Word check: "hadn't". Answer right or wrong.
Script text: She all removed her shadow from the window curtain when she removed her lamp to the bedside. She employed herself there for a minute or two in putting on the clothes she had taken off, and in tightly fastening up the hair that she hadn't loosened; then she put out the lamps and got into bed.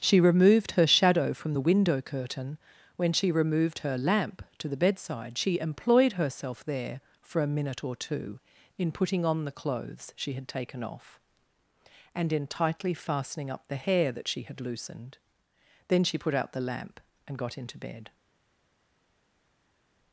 wrong